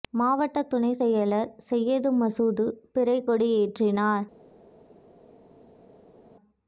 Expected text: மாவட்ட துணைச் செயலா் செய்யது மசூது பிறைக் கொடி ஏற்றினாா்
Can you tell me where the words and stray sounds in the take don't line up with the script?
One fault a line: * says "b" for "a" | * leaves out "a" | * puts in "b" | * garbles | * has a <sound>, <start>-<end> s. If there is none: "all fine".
all fine